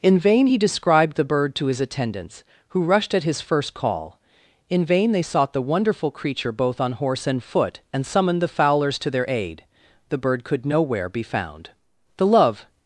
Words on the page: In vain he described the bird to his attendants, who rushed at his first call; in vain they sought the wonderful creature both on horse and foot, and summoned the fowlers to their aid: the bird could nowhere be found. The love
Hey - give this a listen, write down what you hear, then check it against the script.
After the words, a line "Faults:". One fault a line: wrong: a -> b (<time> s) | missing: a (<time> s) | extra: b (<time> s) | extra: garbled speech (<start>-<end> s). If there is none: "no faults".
In vain he described the bird to his attendants, who rushed at his first call; in vain they sought the wonderful creature both on horse and foot, and summoned the fowlers to their aid: the bird could nowhere be found. The love
Faults:
no faults